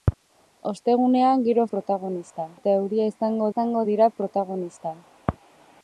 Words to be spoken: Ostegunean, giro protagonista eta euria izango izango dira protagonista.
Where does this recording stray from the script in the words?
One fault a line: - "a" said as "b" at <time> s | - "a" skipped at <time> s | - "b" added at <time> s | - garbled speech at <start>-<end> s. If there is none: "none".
none